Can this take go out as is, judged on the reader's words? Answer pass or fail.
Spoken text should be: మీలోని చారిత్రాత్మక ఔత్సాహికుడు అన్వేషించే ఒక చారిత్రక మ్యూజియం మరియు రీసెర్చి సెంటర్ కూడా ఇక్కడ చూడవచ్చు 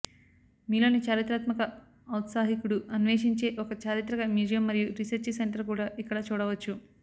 pass